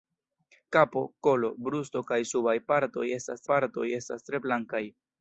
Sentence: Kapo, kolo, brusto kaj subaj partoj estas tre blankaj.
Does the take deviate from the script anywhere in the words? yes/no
yes